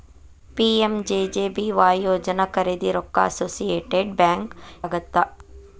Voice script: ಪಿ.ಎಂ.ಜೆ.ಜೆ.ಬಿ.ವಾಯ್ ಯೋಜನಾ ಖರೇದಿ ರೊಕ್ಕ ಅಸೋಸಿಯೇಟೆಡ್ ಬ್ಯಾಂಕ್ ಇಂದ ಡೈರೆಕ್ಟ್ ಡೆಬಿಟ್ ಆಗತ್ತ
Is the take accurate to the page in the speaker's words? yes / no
no